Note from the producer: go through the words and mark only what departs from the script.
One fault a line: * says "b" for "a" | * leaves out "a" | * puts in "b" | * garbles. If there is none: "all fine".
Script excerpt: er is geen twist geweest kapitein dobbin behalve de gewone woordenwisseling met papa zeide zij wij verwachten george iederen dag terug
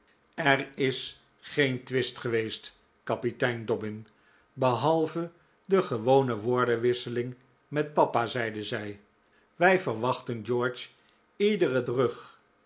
* leaves out "dag"